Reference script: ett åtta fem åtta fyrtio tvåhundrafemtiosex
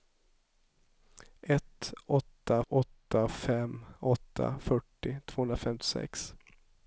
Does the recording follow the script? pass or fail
fail